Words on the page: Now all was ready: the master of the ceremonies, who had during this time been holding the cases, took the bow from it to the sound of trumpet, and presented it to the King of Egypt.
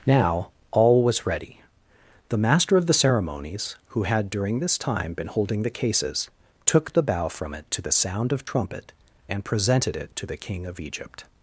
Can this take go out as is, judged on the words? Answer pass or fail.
pass